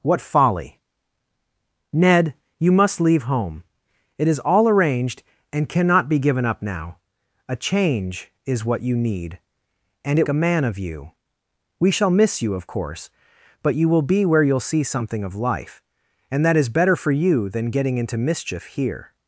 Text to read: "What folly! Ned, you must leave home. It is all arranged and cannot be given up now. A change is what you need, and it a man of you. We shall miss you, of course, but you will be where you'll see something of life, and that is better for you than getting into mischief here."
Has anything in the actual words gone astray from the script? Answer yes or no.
no